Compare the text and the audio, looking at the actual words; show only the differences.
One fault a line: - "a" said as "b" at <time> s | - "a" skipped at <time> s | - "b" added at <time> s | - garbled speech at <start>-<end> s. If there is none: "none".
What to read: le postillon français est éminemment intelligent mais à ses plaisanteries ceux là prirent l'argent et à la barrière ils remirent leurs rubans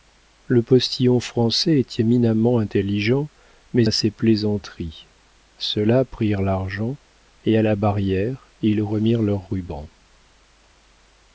none